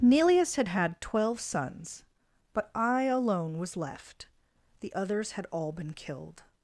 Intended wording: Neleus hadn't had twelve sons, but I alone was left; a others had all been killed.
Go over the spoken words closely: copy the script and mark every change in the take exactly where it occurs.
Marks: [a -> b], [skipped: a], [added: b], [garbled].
Neleus [hadn't -> had] had twelve sons, but I alone was left; [a -> the] others had all been killed.